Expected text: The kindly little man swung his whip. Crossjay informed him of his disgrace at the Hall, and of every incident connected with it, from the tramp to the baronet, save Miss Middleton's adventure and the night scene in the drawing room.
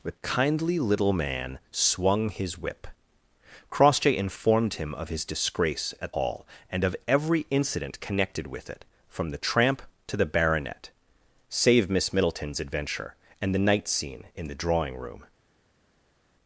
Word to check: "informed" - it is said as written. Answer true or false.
true